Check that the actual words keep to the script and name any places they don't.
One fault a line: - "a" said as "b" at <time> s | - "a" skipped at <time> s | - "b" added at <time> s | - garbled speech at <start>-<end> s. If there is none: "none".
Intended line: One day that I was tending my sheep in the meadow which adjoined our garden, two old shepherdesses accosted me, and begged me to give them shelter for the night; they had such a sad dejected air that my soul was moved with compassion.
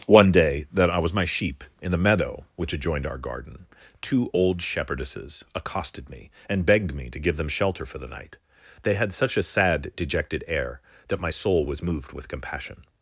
- "tending" skipped at 1.1 s